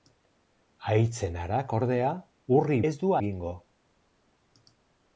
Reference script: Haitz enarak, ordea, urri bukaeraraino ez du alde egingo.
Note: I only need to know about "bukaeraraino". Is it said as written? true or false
false